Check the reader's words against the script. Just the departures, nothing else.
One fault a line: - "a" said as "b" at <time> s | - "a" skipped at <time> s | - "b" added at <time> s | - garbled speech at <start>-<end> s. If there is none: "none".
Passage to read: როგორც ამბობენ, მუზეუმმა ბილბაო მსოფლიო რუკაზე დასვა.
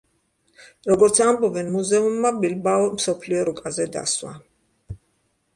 none